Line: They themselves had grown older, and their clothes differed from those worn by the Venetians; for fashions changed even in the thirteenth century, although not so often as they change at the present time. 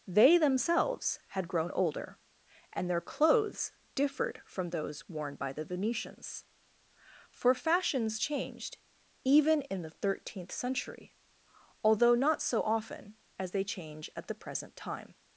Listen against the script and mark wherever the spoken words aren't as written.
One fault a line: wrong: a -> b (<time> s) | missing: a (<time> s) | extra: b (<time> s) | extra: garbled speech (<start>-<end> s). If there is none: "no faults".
no faults